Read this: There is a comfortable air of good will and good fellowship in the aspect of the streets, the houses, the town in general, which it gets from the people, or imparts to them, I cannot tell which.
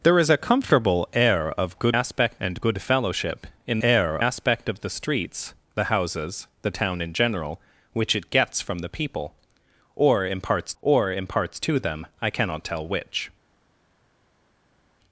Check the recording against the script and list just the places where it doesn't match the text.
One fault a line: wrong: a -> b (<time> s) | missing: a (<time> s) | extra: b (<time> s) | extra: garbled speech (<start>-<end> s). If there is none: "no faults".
wrong: will -> aspect (1.9 s)
wrong: the -> air (3.8 s)
extra: or imparts (10.8 s)